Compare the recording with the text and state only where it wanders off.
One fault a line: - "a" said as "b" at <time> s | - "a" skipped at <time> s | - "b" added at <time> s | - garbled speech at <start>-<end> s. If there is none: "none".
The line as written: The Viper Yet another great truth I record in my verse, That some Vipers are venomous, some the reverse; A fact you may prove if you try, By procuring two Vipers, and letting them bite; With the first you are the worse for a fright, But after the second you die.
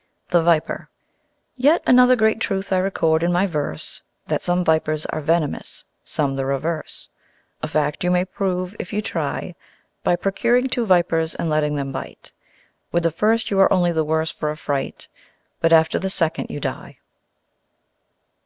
- "only" added at 13.7 s